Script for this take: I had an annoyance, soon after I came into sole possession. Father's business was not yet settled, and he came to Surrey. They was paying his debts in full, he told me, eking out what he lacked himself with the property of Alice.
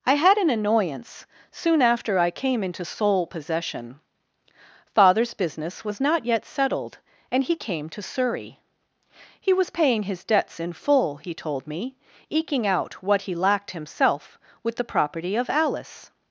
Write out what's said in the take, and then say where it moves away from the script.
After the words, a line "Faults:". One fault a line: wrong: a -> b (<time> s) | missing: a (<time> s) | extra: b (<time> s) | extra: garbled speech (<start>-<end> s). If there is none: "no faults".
I had an annoyance, soon after I came into sole possession. Father's business was not yet settled, and he came to Surrey. He was paying his debts in full, he told me, eking out what he lacked himself with the property of Alice.
Faults:
wrong: They -> He (9.4 s)